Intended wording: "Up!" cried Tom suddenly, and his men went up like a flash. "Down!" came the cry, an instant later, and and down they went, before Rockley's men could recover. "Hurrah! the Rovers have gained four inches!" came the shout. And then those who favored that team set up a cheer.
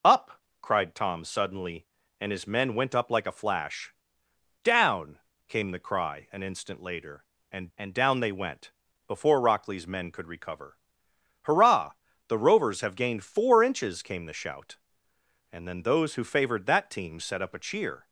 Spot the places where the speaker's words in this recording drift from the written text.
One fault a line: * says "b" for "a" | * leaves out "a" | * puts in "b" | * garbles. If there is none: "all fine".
all fine